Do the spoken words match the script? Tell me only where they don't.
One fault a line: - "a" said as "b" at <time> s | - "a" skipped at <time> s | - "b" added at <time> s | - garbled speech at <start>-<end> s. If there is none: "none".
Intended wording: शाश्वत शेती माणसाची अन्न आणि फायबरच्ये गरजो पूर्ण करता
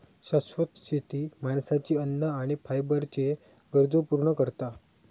none